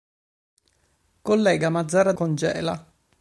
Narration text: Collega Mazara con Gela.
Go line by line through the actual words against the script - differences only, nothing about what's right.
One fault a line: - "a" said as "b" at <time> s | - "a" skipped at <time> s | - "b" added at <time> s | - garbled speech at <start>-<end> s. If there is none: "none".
none